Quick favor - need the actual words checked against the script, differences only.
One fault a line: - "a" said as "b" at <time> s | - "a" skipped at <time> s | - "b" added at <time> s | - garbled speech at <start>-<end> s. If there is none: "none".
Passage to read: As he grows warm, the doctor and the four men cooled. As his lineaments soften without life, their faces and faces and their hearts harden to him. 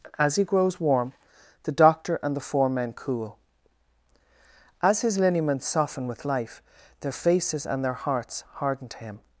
- "cooled" said as "cool" at 2.9 s
- "without" said as "with" at 6.1 s
- "faces and" skipped at 7.8 s